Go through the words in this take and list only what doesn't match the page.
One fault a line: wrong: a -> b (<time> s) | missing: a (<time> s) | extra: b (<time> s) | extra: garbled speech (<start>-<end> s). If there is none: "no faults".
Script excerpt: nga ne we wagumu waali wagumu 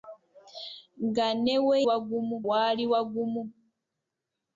no faults